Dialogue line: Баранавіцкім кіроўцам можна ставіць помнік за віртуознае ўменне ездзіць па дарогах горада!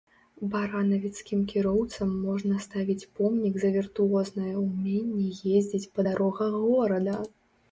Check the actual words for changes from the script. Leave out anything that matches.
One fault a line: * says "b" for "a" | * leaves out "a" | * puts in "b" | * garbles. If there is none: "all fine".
all fine